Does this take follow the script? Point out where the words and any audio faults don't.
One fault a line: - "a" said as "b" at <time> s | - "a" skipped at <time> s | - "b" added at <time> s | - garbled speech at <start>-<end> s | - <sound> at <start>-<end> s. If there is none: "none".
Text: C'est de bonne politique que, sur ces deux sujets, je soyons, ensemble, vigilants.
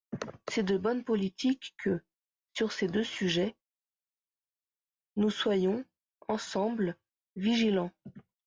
- "je" said as "nous" at 5.2 s